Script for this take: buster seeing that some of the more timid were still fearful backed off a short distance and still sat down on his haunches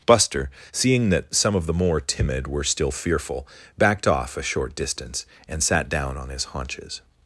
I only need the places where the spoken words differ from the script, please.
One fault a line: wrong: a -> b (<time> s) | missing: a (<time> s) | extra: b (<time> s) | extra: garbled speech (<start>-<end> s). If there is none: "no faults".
missing: still (5.6 s)